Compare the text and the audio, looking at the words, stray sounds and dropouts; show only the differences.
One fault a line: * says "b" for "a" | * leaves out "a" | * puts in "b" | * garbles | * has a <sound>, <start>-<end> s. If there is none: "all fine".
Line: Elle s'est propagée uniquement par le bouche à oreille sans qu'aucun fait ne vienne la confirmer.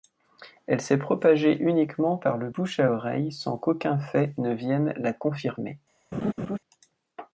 * has a laugh, 6.1-6.6 s